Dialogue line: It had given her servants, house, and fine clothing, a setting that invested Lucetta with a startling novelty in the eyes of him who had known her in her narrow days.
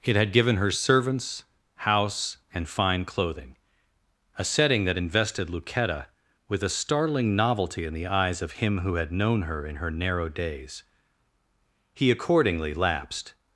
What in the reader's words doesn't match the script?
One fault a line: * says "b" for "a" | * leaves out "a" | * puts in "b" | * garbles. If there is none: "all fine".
* puts in "He accordingly lapsed"